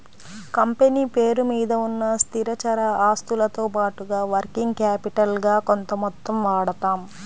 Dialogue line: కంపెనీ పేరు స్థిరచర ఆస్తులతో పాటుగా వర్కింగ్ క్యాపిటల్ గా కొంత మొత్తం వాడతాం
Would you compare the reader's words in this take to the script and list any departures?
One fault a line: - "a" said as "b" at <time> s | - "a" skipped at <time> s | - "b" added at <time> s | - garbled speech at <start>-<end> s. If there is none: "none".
- "మీద ఉన్న" added at 1.5 s